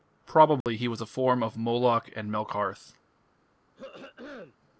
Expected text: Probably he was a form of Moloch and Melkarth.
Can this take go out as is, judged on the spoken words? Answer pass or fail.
pass